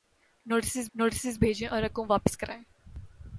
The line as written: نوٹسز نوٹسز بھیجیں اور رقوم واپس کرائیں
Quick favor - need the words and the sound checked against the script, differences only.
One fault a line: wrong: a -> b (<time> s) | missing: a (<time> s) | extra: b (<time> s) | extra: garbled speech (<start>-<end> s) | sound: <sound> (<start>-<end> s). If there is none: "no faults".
no faults